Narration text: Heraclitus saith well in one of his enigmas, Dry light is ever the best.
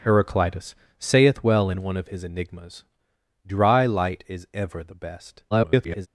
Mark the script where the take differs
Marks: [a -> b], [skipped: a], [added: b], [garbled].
Heraclitus saith well in one of his enigmas, Dry light is ever the best. [garbled]